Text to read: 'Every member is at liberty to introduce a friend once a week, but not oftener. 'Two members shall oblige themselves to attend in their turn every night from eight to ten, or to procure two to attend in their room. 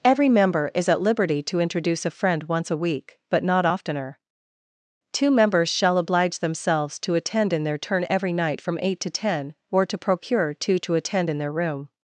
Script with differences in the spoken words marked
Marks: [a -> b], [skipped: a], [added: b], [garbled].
'Every member is at liberty to introduce a friend once a week, but not oftener. 'Two members shall oblige themselves to attend in their turn every night from eight to ten, or to procure two to attend in their room.